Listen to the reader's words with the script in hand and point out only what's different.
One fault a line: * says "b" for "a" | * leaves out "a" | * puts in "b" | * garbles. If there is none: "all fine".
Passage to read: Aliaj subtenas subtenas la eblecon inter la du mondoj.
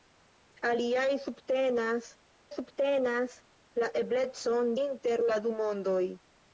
all fine